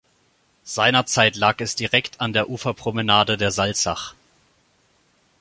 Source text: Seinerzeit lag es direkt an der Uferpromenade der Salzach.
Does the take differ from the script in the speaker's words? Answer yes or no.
no